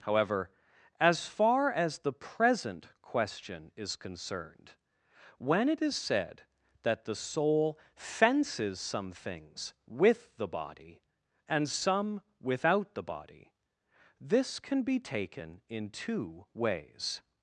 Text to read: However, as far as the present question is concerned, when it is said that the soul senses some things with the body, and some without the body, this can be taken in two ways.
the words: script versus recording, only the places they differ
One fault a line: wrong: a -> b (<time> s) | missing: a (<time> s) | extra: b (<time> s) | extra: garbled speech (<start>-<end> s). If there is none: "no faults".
wrong: senses -> fences (8.0 s)